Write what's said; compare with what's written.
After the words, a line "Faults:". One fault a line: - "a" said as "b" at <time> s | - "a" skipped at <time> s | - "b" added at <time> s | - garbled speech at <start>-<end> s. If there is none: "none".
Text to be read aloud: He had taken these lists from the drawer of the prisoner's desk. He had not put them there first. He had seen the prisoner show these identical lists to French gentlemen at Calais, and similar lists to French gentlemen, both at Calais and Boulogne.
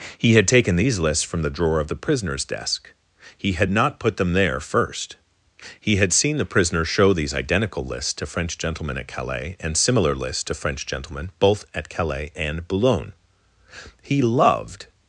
He had taken these lists from the drawer of the prisoner's desk. He had not put them there first. He had seen the prisoner show these identical lists to French gentlemen at Calais, and similar lists to French gentlemen, both at Calais and Boulogne. He loved
Faults:
- "He loved" added at 14.0 s